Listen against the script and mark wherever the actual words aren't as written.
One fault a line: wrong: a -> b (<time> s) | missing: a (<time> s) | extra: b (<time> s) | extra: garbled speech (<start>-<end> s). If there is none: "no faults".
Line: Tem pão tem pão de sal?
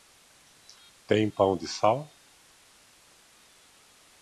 missing: tem pão (1.6 s)